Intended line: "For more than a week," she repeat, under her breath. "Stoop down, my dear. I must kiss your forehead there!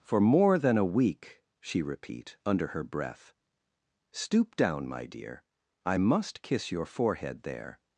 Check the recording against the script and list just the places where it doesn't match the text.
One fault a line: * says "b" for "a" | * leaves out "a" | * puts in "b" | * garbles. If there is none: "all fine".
all fine